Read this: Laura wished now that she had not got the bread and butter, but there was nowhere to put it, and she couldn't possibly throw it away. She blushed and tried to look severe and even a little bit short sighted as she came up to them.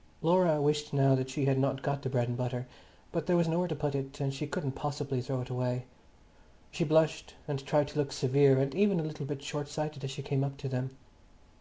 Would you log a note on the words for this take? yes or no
no